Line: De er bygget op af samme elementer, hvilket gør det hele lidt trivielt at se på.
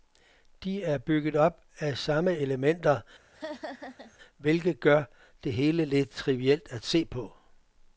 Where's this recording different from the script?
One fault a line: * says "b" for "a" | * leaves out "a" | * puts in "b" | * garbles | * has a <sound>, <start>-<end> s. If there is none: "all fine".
* has a laugh, 3.3-4.2 s